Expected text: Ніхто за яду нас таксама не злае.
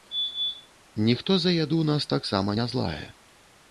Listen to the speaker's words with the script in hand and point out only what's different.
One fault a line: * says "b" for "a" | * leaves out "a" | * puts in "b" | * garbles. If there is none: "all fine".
all fine